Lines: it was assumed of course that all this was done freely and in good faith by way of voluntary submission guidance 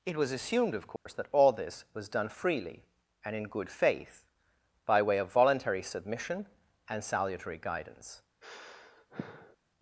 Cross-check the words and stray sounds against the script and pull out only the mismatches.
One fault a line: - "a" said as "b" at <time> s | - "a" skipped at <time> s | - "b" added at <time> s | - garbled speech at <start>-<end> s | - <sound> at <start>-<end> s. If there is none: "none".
- dropout at 1.0-1.1 s
- "and salutary" added at 6.9 s
- sigh at 8.4-9.6 s